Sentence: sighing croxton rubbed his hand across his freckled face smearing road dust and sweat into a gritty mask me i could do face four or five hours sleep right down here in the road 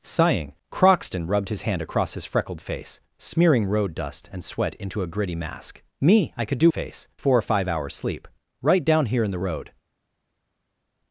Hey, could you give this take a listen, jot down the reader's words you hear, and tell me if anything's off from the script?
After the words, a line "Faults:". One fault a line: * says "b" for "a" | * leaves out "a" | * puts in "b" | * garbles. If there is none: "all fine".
sighing croxton rubbed his hand across his freckled face smearing road dust and sweat into a gritty mask me i could do face four or five hours sleep right down here in the road
Faults:
all fine